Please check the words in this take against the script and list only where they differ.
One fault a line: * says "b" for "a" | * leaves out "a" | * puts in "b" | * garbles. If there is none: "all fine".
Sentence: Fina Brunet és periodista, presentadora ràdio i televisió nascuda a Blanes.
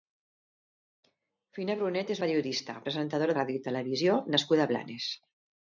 all fine